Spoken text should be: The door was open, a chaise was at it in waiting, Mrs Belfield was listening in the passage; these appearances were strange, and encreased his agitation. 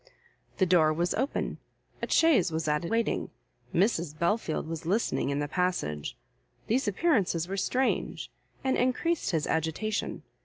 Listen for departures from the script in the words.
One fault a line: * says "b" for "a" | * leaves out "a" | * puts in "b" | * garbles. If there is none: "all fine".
* leaves out "in"